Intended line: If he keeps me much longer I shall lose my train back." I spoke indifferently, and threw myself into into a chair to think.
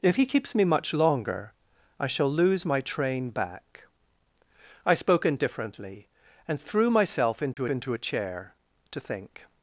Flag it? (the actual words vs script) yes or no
no